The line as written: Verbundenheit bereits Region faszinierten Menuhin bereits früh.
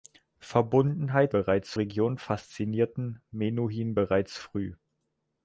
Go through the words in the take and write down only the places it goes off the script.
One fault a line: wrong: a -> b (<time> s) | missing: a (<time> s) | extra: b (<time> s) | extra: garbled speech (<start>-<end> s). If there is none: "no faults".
no faults